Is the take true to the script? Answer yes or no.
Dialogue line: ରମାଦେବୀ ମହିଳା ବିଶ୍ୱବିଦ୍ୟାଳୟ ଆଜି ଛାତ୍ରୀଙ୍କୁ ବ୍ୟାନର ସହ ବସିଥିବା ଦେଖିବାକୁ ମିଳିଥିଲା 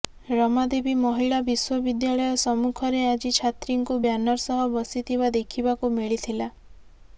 no